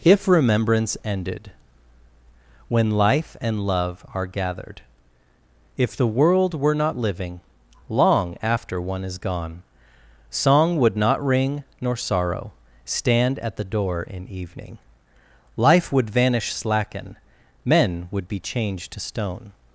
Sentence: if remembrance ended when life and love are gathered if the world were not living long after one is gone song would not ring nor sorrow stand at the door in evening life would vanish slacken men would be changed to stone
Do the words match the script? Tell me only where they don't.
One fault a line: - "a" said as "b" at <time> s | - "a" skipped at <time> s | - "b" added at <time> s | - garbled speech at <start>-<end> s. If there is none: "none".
none